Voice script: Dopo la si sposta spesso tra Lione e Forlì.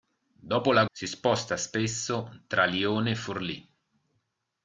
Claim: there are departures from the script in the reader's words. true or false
false